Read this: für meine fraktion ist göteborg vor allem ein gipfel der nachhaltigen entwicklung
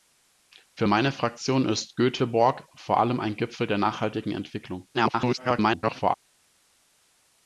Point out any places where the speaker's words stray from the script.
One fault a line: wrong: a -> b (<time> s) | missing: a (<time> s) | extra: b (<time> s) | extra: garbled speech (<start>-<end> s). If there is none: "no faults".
extra: garbled speech (4.9-6.1 s)